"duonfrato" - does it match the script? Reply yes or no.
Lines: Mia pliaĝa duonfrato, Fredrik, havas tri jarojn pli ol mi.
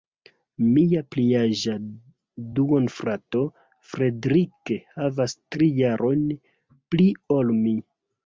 yes